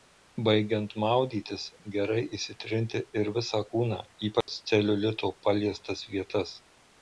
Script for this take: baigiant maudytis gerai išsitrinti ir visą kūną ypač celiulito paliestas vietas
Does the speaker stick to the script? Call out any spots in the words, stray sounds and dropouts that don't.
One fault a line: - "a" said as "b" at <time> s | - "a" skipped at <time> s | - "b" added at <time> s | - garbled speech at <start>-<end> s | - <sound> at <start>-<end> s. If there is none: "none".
- dropout at 4.4-4.5 s